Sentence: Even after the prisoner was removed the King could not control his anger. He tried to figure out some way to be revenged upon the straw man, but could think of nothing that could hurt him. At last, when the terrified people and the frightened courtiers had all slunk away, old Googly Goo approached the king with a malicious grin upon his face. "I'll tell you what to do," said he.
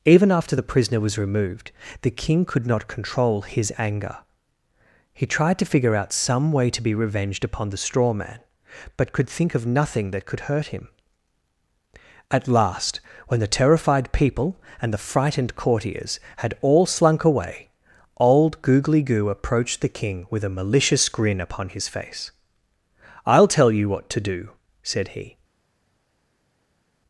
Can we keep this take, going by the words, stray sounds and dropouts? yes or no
yes